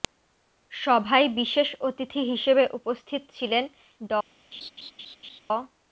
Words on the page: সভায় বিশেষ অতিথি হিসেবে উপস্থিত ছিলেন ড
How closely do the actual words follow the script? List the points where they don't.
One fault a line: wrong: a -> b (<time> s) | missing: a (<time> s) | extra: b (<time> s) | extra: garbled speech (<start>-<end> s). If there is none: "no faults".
no faults